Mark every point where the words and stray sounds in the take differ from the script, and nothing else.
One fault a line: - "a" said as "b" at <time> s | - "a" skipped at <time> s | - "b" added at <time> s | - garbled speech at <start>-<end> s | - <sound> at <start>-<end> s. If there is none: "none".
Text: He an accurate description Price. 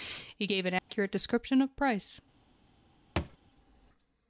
- "gave" added at 0.4 s
- dropout at 0.8-0.9 s
- "of" added at 1.6 s
- thud at 3.2-3.4 s